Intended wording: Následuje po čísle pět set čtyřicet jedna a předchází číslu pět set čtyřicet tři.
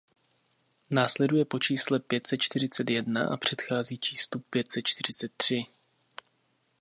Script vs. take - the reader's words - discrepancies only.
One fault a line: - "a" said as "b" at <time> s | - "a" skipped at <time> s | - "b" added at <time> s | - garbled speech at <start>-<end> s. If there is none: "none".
none